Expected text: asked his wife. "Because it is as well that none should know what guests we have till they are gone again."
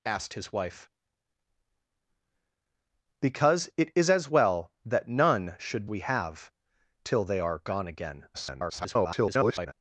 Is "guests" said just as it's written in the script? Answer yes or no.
no